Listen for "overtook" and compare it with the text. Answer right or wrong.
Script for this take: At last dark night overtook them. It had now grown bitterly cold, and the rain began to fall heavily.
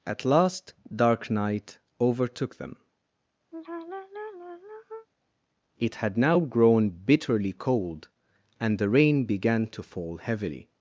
right